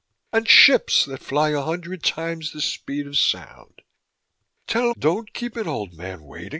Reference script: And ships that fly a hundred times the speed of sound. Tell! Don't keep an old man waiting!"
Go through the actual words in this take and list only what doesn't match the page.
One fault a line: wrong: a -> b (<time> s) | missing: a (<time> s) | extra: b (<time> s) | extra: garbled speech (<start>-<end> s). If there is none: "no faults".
no faults